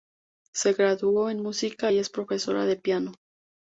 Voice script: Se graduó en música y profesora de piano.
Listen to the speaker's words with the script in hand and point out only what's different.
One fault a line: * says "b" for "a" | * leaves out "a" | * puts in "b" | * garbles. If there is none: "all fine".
* puts in "es"